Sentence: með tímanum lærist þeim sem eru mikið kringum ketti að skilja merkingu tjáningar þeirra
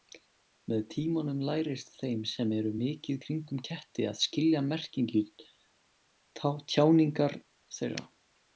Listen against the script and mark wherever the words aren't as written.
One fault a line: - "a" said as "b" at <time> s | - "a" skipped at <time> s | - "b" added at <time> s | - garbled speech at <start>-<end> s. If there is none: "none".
none